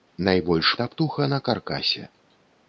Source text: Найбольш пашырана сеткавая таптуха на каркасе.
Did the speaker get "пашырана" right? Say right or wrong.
wrong